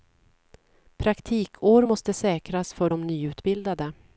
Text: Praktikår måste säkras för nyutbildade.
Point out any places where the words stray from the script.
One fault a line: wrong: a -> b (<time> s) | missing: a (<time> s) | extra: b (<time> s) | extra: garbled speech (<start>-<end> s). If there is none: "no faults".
extra: de (2.9 s)